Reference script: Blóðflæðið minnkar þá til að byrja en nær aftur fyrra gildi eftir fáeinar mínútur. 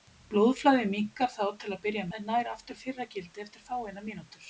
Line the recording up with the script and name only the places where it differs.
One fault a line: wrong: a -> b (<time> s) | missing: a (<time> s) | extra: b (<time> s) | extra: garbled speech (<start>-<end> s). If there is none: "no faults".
no faults